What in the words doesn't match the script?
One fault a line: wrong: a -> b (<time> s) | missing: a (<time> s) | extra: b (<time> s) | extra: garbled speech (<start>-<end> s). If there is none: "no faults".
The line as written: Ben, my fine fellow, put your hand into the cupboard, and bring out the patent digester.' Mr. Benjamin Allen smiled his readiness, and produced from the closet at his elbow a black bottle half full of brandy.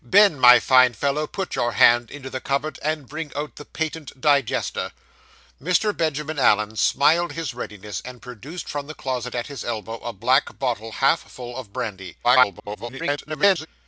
extra: garbled speech (12.2-13.7 s)